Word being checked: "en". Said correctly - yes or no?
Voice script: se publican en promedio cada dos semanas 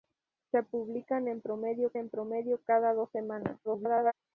yes